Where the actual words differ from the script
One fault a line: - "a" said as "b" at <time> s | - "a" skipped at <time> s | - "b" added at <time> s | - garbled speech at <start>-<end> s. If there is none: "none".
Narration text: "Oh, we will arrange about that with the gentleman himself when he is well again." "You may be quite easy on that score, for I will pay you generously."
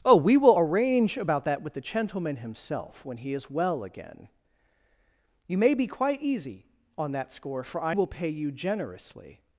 none